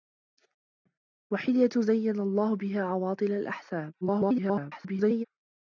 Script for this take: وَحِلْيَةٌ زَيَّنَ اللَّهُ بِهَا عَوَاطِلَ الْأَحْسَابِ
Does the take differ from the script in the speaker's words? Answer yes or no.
yes